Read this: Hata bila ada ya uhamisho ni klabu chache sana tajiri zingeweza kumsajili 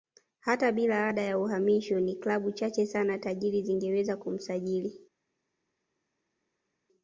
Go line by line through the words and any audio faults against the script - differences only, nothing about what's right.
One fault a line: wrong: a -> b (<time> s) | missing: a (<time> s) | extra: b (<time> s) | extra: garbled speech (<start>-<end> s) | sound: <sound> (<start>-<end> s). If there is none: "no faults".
no faults